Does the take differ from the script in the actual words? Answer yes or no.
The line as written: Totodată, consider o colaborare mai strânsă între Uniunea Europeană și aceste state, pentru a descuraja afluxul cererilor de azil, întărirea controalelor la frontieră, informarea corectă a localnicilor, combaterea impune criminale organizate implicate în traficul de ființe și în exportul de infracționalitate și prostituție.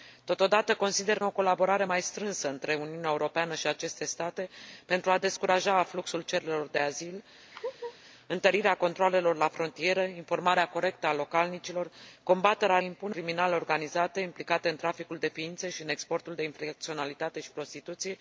no